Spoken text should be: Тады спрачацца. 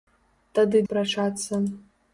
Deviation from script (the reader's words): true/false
false